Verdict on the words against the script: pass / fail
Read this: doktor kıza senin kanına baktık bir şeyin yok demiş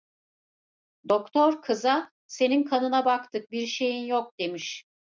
pass